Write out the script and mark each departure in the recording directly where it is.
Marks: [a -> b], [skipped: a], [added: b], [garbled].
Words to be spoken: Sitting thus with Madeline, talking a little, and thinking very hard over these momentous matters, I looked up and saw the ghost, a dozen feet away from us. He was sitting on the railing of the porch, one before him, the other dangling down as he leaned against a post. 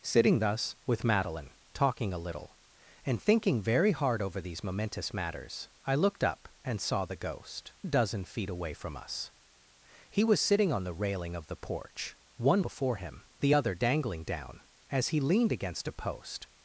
Sitting thus with Madeline, talking a little, and thinking very hard over these momentous matters, I looked up and saw the ghost, a dozen feet away from us. He was sitting on the railing of the porch, one before him, the other dangling down as he leaned against a post.